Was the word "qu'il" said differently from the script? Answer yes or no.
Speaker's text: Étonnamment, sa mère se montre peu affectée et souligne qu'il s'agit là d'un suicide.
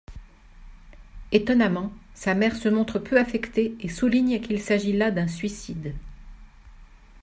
no